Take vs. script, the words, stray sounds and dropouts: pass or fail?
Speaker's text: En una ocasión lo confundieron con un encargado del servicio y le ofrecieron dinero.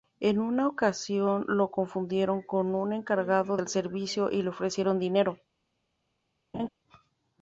fail